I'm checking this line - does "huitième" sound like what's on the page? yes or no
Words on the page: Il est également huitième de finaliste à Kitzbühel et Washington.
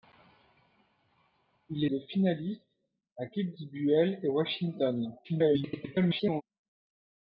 no